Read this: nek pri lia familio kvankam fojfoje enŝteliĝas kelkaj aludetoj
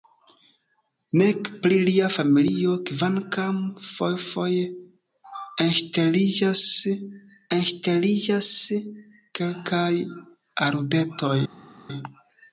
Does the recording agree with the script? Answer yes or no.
no